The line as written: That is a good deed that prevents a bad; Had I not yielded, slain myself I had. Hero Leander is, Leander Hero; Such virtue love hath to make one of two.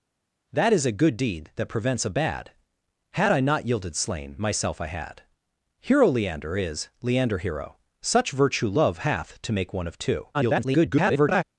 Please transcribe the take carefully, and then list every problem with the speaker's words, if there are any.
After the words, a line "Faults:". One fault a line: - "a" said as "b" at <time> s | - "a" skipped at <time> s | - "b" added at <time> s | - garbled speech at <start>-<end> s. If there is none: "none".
That is a good deed that prevents a bad; Had I not yielded, slain myself I had. Hero Leander is, Leander Hero; Such virtue love hath to make one of two. [garbled]
Faults:
- garbled speech at 10.3-11.4 s